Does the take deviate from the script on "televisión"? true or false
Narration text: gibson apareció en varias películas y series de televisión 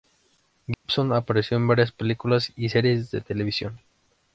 false